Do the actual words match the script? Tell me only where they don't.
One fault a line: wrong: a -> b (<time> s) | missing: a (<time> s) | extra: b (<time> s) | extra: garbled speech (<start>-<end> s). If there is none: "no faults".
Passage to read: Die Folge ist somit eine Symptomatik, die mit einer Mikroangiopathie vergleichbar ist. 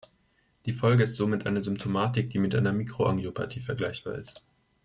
no faults